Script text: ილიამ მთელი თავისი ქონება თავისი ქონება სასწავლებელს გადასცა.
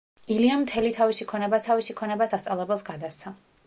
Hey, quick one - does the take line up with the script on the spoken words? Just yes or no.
yes